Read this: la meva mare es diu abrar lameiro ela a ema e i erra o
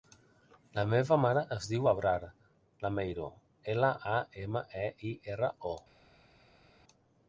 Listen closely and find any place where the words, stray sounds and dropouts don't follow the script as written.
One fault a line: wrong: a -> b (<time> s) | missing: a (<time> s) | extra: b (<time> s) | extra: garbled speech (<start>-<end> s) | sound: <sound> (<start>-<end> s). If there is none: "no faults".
no faults